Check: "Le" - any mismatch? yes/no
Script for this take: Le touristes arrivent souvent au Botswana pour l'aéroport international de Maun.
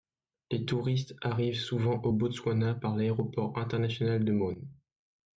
yes